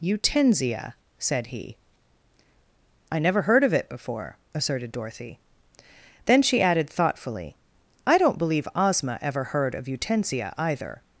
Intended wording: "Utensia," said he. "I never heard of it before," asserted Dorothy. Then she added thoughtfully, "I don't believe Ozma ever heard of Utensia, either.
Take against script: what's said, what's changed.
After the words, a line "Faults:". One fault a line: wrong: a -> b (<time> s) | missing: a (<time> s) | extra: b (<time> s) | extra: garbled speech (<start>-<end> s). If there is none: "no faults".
"Utensia," said he. "I never heard of it before," asserted Dorothy. Then she added thoughtfully, "I don't believe Ozma ever heard of Utensia, either.
Faults:
no faults